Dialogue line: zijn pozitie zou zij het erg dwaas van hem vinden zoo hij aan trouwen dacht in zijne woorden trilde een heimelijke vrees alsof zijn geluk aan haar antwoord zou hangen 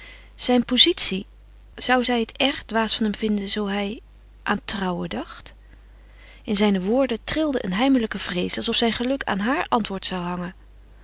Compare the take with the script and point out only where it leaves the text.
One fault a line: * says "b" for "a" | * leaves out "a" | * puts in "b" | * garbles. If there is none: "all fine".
all fine